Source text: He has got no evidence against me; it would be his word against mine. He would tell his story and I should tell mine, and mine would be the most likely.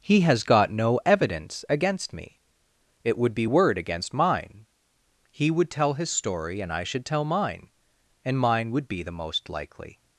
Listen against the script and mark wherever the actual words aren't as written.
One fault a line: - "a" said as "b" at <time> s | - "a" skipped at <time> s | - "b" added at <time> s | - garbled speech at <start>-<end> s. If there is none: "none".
- "his" skipped at 3.5 s